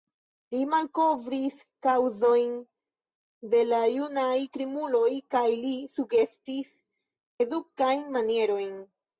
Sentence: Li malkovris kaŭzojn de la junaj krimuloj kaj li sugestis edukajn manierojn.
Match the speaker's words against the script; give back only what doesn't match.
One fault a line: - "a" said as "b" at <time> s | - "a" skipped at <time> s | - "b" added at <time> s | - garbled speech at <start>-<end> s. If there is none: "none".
none